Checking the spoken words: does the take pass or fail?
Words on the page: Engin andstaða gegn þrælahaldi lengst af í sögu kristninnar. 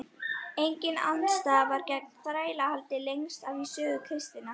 fail